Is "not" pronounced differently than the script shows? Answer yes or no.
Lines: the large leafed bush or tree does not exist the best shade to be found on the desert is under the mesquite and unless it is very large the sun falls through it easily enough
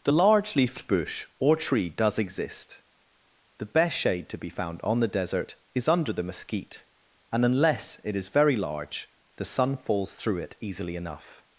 yes